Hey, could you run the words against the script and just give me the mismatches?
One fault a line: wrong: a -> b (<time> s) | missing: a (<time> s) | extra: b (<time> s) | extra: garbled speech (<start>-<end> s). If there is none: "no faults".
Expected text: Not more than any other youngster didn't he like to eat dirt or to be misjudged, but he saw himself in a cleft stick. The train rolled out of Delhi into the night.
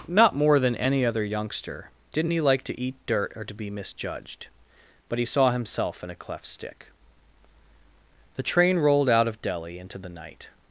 no faults